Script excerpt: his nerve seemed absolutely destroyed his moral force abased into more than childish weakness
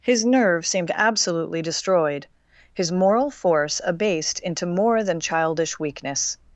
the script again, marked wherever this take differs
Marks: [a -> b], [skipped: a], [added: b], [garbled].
his nerve seemed absolutely destroyed his moral force abased into more than childish weakness